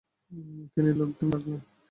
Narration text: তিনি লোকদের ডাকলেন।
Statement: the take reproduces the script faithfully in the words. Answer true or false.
true